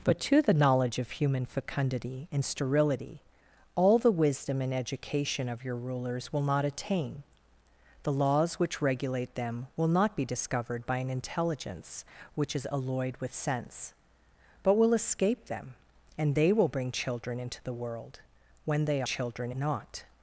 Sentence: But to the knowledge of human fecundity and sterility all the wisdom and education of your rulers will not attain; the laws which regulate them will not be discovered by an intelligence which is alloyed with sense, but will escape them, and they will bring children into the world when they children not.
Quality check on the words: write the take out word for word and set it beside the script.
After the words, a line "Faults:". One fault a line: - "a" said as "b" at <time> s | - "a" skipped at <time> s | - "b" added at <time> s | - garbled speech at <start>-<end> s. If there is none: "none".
But to the knowledge of human fecundity and sterility all the wisdom and education of your rulers will not attain; the laws which regulate them will not be discovered by an intelligence which is alloyed with sense, but will escape them, and they will bring children into the world when they children not.
Faults:
none